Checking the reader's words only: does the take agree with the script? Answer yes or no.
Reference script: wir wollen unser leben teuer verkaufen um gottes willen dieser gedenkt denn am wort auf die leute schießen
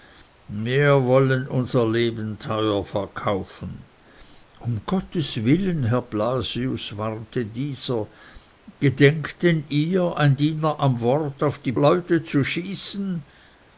no